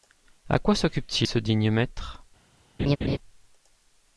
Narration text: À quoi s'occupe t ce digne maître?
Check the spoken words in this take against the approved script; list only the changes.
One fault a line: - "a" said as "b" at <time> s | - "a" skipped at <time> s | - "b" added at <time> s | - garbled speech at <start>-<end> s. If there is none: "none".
none